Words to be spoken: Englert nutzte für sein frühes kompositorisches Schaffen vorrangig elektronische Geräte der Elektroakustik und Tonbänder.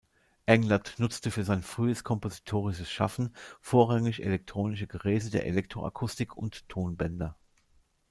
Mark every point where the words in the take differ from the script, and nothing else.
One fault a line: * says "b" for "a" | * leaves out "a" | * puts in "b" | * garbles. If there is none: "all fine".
all fine